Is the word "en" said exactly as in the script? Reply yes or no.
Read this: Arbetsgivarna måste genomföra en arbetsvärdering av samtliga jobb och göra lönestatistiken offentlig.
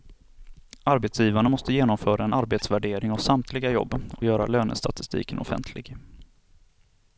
yes